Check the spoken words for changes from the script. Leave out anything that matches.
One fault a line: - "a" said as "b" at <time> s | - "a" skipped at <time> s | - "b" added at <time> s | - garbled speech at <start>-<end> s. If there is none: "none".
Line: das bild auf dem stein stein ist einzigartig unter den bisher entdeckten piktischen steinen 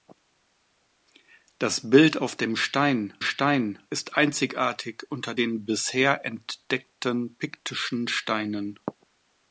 none